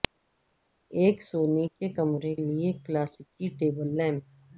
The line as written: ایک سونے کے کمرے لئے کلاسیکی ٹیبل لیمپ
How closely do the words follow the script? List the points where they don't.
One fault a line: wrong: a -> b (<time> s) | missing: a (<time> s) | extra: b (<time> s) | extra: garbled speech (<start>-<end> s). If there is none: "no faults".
no faults